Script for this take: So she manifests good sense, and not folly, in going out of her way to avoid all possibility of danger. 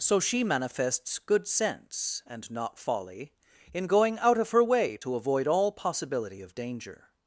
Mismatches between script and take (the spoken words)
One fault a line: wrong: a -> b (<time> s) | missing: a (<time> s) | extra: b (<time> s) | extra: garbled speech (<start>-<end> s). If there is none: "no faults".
no faults